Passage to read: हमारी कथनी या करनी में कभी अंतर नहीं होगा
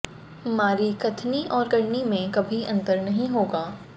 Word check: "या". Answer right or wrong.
wrong